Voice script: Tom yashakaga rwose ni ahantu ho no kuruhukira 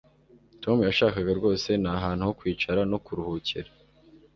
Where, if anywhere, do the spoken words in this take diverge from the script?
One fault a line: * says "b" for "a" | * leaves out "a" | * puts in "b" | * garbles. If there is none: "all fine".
* puts in "kwicara"